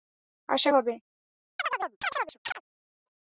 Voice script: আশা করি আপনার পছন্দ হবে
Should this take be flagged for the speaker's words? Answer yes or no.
yes